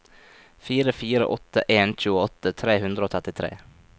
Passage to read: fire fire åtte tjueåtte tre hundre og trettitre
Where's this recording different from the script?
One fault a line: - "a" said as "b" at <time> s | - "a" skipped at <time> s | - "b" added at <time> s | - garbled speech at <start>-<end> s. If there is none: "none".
- "en" added at 1.7 s